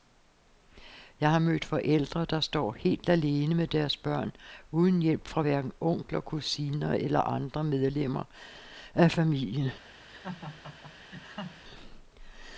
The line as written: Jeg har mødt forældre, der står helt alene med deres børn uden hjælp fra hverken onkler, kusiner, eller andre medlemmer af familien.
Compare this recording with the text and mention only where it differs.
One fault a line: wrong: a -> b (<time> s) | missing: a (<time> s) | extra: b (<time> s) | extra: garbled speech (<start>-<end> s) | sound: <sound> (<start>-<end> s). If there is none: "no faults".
sound: laugh (10.1-11.6 s)